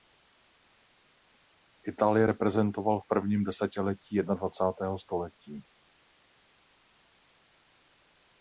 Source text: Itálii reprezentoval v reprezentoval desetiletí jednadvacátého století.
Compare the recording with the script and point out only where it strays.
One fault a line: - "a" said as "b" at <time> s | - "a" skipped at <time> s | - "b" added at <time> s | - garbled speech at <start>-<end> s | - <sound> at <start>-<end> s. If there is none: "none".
- "reprezentoval" said as "prvním" at 3.1 s